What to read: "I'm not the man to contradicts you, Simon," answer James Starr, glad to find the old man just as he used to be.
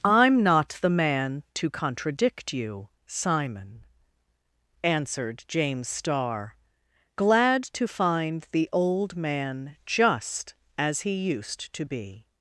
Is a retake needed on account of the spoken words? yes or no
yes